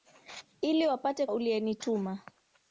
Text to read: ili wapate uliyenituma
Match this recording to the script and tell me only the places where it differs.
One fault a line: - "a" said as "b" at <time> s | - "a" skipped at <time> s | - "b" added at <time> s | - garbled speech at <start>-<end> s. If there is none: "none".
none